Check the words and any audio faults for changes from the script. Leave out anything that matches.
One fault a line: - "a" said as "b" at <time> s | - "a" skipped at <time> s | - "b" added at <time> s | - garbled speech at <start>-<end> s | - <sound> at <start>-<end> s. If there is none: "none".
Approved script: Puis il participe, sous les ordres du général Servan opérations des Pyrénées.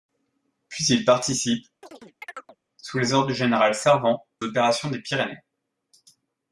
- chirp at 1.8-2.6 s